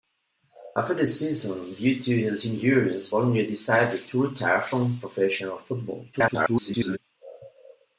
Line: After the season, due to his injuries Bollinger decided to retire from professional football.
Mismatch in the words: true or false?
true